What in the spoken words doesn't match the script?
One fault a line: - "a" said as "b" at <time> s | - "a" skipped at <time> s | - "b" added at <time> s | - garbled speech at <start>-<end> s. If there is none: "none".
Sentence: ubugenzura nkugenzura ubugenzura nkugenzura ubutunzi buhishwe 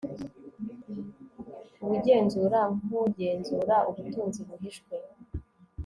- "ubugenzura nkugenzura" skipped at 3.8 s